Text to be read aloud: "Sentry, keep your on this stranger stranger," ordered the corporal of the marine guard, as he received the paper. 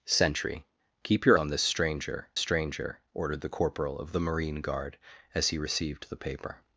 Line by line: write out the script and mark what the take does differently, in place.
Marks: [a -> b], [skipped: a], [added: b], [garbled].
"Sentry, keep your on this stranger stranger," ordered the corporal of the marine guard, as he received the paper.